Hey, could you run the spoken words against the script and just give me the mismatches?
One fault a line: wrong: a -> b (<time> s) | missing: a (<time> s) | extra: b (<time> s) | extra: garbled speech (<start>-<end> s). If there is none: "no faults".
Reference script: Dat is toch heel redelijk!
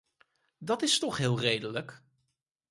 no faults